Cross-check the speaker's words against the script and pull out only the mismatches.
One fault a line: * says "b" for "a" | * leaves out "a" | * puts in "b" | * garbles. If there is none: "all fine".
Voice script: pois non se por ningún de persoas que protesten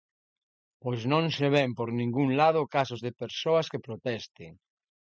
* puts in "ven"
* puts in "lado casos"